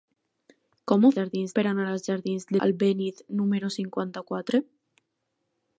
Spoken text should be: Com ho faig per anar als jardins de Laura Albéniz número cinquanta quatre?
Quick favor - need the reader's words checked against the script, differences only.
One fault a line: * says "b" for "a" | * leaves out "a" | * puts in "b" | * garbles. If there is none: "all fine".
* says "jardins" for "faig"
* leaves out "Laura"